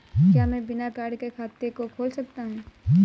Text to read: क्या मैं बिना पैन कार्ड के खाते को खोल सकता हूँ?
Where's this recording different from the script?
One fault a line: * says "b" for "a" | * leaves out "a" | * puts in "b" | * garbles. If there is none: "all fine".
* leaves out "पैन"